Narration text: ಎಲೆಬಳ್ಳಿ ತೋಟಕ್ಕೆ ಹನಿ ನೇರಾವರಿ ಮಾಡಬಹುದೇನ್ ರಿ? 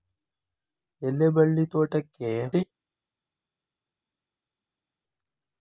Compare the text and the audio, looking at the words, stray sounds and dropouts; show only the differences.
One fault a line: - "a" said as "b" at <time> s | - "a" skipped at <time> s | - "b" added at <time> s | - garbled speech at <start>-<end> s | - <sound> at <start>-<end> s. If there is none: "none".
- "ಹನಿ ನೇರಾವರಿ ಮಾಡಬಹುದೇನ್" skipped at 2.3 s